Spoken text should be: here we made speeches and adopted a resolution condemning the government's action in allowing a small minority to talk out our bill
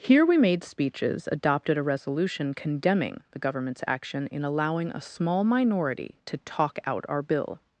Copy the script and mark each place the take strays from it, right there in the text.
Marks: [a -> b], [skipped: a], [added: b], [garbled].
here we made speeches [skipped: and] adopted a resolution condemning the government's action in allowing a small minority to talk out our bill